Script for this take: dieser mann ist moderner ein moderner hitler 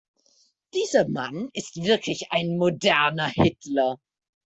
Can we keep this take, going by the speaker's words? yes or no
no